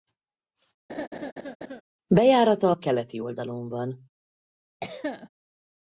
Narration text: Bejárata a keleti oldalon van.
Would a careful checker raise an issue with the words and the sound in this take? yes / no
yes